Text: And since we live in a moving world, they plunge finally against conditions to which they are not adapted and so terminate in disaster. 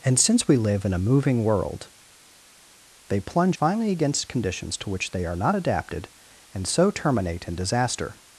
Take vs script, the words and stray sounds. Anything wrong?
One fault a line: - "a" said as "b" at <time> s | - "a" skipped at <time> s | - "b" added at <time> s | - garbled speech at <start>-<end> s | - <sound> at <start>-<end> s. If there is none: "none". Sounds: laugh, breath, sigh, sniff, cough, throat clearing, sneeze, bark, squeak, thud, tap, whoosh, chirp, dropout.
none